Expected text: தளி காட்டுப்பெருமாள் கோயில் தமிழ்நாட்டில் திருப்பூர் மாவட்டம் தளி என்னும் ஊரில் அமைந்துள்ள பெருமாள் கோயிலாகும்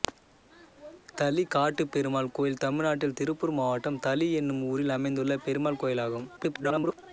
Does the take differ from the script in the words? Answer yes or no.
yes